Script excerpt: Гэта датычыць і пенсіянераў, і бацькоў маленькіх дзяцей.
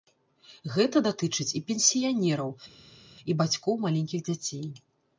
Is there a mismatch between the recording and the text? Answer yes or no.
no